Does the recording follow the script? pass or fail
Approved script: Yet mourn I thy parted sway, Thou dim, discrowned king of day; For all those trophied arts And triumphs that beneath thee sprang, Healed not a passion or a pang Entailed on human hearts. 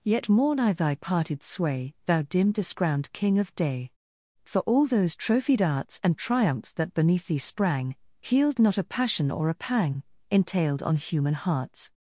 pass